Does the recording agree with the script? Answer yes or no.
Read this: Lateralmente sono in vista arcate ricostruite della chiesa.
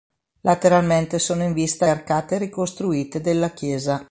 yes